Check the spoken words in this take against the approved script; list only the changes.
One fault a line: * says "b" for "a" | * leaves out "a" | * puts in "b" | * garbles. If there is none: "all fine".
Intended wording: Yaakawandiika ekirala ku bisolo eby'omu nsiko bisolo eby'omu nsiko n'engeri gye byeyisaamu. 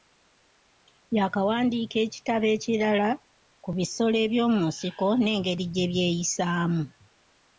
* puts in "ekitabo"
* leaves out "bisolo eby'omu nsiko"